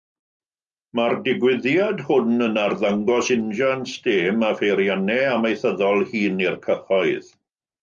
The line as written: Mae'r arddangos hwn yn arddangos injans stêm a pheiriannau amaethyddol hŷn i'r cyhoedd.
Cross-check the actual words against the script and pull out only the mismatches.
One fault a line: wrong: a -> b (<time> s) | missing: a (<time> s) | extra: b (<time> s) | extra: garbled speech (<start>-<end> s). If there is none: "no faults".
wrong: arddangos -> digwyddiad (1.3 s)